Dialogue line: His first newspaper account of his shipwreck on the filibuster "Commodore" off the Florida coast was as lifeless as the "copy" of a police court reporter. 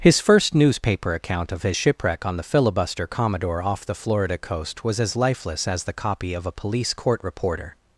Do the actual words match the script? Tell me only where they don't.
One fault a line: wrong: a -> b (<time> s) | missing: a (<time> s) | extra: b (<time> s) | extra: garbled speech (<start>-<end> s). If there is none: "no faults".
no faults